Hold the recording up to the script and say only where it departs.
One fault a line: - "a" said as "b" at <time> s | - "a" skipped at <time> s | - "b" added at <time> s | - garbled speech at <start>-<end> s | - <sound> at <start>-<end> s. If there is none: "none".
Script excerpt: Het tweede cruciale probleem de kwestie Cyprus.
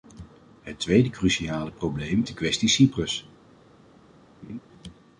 - laugh at 4.4-4.6 s